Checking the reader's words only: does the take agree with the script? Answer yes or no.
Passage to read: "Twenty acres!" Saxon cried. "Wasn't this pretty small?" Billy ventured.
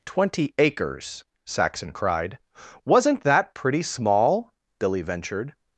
no